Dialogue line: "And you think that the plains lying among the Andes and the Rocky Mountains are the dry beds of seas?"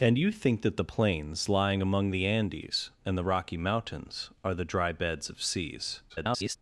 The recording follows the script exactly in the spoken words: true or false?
false